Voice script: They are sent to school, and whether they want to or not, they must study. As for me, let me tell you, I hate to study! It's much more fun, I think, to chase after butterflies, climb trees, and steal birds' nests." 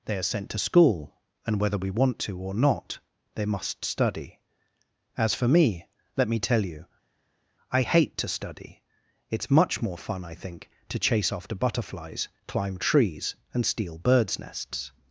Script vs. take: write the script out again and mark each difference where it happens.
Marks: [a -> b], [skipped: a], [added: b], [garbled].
They are sent to school, and whether [they -> we] want to or not, they must study. As for me, let me tell you, I hate to study! It's much more fun, I think, to chase after butterflies, climb trees, and steal birds' nests."